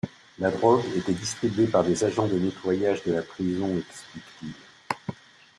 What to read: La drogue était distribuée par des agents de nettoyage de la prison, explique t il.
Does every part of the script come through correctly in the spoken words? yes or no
yes